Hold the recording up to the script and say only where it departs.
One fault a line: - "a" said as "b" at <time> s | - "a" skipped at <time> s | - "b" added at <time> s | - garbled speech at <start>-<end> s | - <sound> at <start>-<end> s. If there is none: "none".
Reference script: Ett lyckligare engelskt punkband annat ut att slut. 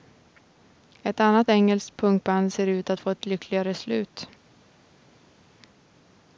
- "lyckligare" said as "annat" at 1.2 s
- "annat" said as "ser" at 2.5 s
- "få ett lyckligare" added at 3.0 s